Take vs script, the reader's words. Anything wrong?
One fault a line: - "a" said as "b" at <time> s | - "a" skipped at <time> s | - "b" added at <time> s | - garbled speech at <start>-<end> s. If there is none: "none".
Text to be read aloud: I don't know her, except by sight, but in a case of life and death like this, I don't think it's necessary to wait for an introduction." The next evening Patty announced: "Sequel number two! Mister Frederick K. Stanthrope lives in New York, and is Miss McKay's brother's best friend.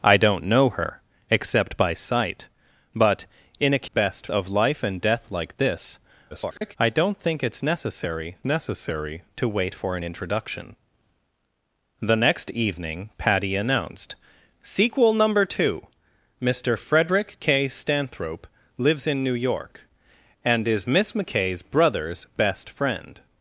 - "case" said as "best" at 3.9 s
- garbled speech at 6.3-6.8 s
- "necessary" added at 8.4 s